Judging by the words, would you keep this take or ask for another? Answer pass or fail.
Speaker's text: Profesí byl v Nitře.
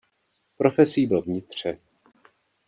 pass